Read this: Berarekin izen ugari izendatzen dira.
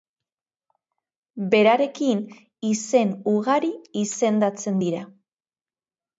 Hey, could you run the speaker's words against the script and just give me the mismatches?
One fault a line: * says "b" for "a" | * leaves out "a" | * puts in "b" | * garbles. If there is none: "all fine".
all fine